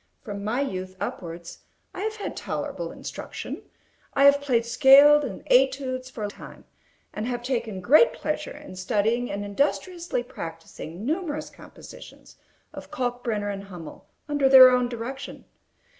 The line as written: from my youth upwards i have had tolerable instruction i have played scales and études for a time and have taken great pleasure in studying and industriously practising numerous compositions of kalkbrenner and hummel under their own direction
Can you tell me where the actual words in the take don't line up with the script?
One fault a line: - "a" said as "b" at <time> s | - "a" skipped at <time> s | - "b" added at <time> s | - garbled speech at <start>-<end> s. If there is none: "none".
none